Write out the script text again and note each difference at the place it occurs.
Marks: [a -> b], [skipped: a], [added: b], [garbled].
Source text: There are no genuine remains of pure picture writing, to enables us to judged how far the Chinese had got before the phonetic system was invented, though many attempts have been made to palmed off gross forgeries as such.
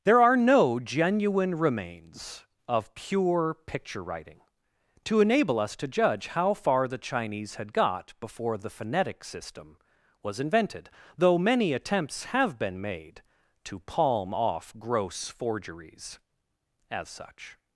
There are no genuine remains of pure picture writing, to [enables -> enable] us to [judged -> judge] how far the Chinese had got before the phonetic system was invented, though many attempts have been made to [palmed -> palm] off gross forgeries as such.